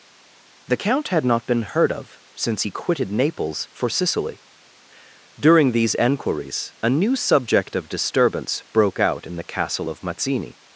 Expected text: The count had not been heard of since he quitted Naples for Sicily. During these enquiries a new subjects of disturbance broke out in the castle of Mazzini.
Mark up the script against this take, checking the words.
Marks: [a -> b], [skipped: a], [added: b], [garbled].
The count had not been heard of since he quitted Naples for Sicily. During these enquiries a new [subjects -> subject] of disturbance broke out in the castle of Mazzini.